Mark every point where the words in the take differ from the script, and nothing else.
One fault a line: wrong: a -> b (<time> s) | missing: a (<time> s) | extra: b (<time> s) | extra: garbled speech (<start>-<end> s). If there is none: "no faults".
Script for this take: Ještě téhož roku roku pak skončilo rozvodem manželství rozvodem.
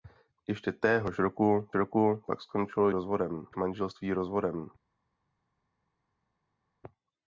no faults